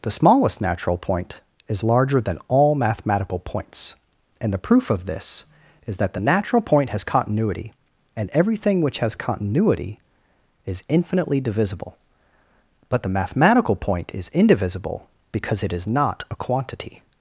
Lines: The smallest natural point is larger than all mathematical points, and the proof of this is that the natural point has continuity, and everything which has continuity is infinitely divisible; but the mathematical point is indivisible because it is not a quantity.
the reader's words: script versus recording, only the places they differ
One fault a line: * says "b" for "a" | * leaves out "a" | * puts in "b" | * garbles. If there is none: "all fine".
all fine